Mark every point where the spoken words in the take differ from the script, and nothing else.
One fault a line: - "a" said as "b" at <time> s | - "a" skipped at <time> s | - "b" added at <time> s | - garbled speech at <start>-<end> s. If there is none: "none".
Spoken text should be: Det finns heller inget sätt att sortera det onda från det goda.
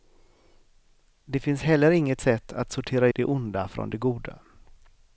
none